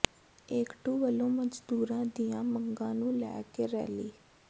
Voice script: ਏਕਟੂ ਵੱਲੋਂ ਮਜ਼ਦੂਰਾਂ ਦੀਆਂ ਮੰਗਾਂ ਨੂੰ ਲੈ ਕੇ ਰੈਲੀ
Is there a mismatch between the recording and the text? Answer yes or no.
no